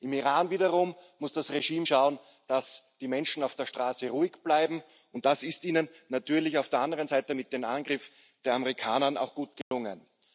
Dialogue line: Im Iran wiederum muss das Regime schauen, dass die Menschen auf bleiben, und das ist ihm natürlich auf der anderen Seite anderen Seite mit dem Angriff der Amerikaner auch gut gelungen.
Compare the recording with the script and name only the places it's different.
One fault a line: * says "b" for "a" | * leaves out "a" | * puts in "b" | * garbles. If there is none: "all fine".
* puts in "der Straße ruhig"
* leaves out "anderen Seite"